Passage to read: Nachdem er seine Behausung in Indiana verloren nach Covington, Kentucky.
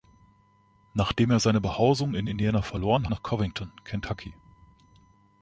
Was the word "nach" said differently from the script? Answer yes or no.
no